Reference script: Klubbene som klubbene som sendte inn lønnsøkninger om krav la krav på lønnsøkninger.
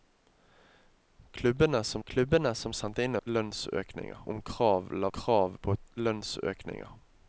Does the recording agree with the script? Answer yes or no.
yes